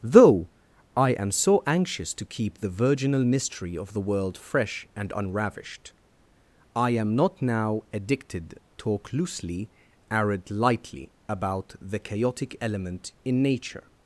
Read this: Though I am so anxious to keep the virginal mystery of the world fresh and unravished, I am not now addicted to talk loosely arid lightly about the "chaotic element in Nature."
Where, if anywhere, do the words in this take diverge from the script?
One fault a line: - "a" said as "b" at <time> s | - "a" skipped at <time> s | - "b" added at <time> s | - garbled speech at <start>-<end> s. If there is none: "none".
- "to" skipped at 8.6 s